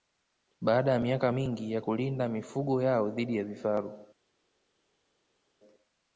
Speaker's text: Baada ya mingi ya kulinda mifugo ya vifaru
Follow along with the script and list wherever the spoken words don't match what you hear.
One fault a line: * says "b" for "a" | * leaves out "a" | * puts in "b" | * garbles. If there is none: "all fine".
* puts in "miaka"
* puts in "yao dhidi"